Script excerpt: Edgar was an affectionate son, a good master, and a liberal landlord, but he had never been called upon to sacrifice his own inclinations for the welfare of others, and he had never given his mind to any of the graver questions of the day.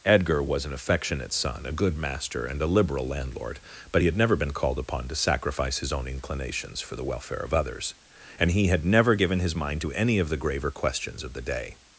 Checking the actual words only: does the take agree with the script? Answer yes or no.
yes